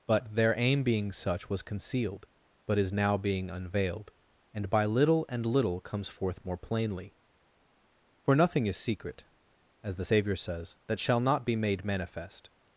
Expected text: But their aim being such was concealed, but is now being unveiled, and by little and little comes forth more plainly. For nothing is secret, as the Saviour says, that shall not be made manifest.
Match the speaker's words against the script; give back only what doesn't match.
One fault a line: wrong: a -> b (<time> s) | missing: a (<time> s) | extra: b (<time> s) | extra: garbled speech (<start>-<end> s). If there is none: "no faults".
no faults